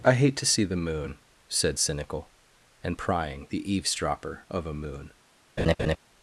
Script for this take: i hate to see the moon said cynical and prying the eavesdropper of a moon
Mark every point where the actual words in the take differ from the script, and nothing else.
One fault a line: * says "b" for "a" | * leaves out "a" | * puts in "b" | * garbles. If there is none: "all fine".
all fine